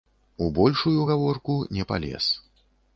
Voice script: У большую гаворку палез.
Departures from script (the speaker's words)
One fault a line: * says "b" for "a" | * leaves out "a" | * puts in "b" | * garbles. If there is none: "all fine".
* puts in "не"